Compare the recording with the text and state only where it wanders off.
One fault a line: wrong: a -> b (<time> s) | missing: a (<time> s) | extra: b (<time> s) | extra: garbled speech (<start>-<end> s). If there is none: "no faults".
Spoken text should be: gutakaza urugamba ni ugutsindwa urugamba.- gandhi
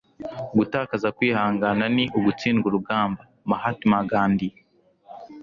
wrong: urugamba -> kwihangana (1.2 s)
extra: mahatma (3.5 s)